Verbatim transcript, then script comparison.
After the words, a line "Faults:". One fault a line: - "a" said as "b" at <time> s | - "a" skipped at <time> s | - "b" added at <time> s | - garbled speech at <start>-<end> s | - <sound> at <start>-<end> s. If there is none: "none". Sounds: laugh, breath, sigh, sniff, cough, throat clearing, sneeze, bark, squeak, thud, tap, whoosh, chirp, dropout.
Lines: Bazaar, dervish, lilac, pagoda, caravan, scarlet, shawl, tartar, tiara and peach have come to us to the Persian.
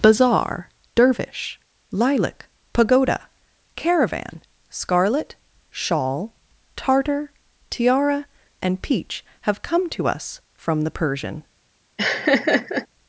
Bazaar, dervish, lilac, pagoda, caravan, scarlet, shawl, tartar, tiara and peach have come to us from the Persian.
Faults:
- "to" said as "from" at 10.5 s
- laugh at 12.0-12.9 s